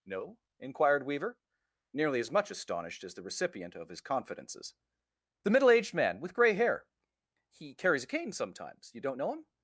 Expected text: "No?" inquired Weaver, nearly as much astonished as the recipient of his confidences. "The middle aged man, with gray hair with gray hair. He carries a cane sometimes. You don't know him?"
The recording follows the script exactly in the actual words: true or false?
false